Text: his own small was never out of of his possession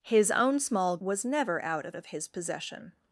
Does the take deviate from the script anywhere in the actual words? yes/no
no